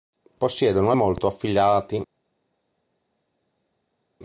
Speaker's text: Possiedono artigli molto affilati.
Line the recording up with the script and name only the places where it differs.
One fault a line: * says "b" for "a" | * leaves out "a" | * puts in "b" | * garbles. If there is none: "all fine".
* leaves out "artigli"